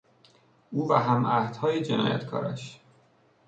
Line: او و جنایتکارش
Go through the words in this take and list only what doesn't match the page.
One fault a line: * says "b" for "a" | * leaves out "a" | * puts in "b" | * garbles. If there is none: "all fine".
* puts in "همعهدهای"